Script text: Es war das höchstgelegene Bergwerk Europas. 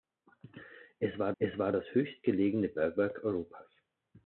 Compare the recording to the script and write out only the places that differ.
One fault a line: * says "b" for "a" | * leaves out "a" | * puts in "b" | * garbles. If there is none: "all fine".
* puts in "es war"